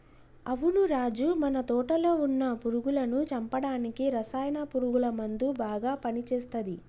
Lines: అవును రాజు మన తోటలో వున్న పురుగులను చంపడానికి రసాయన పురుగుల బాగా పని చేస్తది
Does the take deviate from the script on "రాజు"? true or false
false